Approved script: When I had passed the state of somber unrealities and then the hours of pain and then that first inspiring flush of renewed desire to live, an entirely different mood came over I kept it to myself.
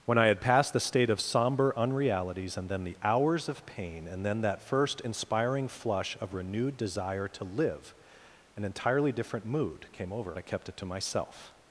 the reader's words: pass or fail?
pass